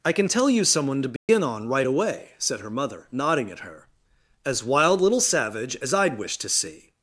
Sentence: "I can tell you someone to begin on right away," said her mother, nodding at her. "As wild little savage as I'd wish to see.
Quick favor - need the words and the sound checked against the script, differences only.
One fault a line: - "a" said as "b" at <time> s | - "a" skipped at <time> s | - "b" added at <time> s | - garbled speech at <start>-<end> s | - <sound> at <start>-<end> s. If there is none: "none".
- dropout at 1.2-1.3 s